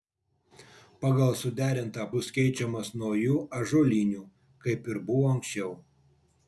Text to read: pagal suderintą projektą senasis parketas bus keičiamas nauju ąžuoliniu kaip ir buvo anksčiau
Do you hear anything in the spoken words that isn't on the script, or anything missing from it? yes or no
yes